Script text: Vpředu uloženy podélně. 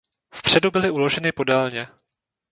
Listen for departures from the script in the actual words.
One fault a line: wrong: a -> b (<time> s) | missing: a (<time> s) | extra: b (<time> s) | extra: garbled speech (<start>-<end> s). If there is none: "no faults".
extra: byly (0.7 s)